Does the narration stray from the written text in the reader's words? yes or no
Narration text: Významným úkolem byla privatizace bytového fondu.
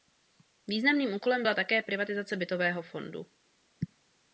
yes